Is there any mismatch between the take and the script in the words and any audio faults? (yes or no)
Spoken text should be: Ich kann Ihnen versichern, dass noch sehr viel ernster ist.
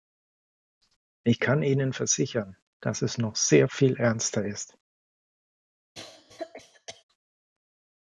yes